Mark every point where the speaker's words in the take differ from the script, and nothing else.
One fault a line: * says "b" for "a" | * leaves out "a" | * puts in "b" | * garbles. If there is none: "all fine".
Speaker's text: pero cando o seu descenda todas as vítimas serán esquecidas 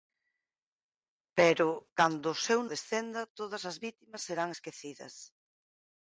all fine